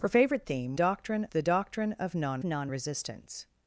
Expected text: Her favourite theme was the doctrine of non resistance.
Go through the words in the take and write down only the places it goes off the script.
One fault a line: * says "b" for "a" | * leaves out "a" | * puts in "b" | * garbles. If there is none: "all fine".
* says "doctrine" for "was"
* puts in "non"